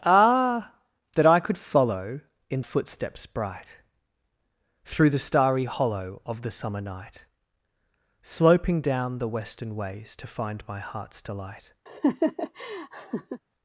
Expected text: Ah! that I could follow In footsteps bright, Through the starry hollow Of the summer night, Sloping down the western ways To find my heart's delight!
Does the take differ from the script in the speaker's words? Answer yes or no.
no